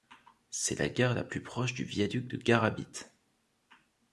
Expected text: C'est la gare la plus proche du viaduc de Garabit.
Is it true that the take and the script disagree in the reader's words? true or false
false